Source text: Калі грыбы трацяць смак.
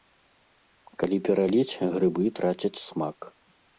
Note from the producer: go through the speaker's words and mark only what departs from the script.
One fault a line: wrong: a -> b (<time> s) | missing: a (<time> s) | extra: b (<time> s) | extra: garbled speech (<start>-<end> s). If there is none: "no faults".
extra: пераліць (1.3 s)